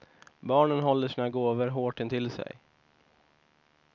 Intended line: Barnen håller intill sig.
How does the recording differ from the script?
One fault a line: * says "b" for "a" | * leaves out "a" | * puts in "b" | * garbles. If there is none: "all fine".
* puts in "sina gåvor hårt"